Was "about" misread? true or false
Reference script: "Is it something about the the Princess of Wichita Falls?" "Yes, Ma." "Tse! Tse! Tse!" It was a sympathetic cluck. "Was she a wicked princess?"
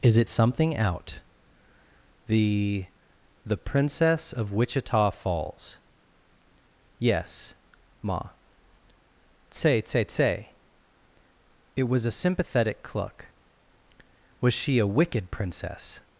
true